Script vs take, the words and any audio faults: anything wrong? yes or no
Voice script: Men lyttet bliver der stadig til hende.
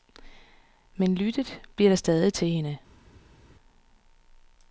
no